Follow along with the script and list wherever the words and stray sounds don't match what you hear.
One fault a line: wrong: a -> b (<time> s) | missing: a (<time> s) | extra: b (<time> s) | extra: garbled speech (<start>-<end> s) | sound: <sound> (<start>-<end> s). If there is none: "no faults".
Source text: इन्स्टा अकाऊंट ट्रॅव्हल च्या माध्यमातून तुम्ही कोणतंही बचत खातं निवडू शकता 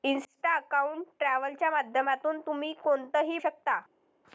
missing: बचत खातं निवडू (3.4 s)